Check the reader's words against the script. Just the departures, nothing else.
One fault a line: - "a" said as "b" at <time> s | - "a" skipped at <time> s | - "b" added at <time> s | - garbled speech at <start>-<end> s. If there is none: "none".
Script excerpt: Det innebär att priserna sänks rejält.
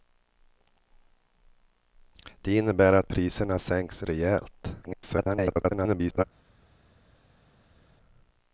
- garbled speech at 4.8-6.2 s